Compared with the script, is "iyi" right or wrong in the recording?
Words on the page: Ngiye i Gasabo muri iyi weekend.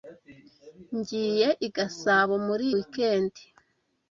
wrong